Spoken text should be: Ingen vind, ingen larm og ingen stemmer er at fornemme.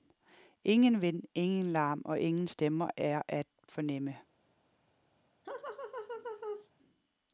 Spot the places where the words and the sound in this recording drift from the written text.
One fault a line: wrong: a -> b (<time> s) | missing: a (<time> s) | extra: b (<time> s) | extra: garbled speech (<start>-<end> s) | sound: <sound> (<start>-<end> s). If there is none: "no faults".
sound: laugh (5.4-6.7 s)